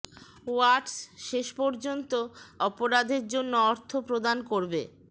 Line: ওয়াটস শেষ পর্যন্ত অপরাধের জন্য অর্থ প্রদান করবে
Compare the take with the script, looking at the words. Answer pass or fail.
pass